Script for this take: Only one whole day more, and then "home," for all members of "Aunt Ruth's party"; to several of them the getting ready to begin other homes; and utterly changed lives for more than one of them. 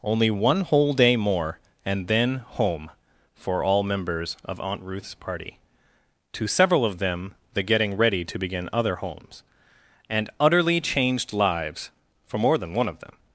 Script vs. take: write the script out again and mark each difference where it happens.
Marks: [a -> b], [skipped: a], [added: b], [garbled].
Only one whole day more, and then "home," for all members of "Aunt Ruth's party"; to several of them the getting ready to begin other homes; and utterly changed lives for more than one of them.